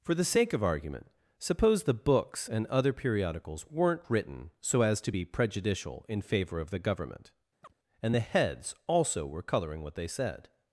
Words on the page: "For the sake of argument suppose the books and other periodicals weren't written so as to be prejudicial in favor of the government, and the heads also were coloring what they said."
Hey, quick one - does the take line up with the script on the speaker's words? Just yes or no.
yes